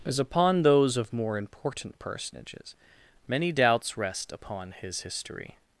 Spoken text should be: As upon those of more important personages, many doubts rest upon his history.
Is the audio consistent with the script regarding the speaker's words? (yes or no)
yes